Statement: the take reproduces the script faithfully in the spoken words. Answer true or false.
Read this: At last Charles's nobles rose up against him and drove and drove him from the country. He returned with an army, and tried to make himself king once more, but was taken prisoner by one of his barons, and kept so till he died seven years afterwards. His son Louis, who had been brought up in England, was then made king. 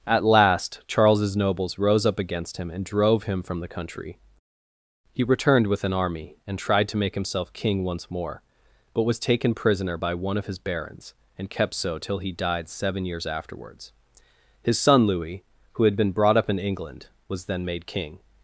false